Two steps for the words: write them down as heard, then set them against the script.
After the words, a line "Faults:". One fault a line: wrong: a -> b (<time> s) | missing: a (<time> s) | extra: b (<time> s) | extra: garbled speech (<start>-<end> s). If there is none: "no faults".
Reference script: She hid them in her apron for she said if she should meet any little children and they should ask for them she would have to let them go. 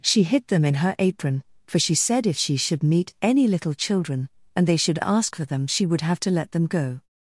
She hid them in her apron for she said if she should meet any little children and they should ask for them she would have to let them go.
Faults:
no faults